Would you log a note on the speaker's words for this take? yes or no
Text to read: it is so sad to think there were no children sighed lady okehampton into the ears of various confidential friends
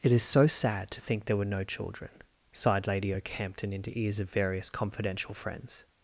yes